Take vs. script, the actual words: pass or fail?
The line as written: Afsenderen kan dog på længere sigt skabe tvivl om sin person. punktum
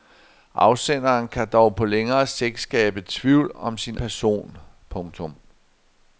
pass